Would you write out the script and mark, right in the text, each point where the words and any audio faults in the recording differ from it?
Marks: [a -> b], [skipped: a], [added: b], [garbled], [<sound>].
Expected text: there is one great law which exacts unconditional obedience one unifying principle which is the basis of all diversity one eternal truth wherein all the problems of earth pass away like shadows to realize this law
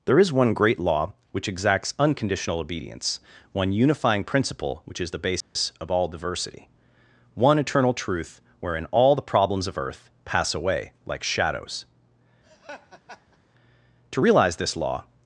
there is one great law which exacts unconditional obedience one unifying principle which is the basis [dropout] of all diversity one eternal truth wherein all the problems of earth pass away like shadows [laugh] to realize this law